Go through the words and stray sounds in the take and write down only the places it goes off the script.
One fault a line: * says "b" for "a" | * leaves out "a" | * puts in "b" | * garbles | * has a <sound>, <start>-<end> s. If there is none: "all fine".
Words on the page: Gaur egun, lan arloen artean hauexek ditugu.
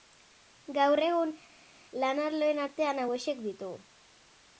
all fine